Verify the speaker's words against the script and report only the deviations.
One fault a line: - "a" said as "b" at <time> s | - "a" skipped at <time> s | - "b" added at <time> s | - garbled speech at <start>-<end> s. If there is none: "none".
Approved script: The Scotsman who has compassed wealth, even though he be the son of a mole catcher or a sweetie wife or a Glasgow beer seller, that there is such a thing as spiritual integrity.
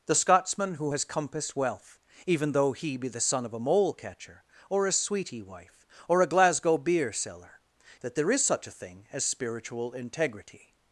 none